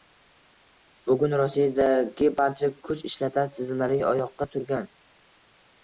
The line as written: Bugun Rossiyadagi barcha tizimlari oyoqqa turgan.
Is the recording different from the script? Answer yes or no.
yes